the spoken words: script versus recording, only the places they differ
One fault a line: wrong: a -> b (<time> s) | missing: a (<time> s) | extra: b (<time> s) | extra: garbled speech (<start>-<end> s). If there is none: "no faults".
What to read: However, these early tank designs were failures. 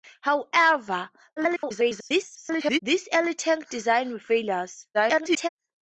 extra: garbled speech (1.4-2.8 s)
extra: garbled speech (4.9-5.5 s)